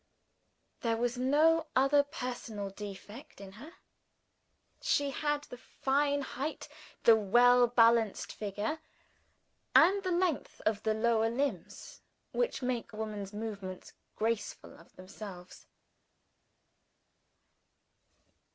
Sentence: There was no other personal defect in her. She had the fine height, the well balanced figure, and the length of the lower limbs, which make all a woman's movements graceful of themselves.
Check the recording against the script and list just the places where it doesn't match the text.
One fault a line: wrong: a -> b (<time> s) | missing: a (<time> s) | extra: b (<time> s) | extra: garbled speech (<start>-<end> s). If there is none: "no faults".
missing: all (12.9 s)